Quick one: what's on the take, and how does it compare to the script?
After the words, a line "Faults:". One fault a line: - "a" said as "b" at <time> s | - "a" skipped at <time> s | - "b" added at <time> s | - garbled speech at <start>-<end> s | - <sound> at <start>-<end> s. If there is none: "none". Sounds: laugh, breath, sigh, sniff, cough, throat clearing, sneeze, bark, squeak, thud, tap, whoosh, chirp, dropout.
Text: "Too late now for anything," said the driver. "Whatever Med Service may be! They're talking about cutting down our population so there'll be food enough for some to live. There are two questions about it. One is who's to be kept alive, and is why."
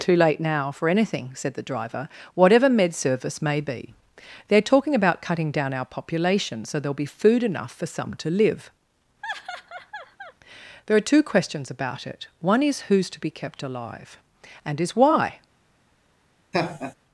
"Too late now for anything," said the driver. "Whatever Med Service may be! They're talking about cutting down our population so there'll be food enough for some to live. There are two questions about it. One is who's to be kept alive, and is why."
Faults:
- laugh at 9.2-10.3 s
- laugh at 16.5-16.9 s